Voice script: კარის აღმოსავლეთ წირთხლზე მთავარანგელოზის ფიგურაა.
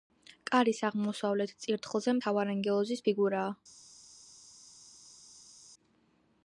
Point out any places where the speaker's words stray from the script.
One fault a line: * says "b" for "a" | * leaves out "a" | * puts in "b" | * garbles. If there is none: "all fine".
all fine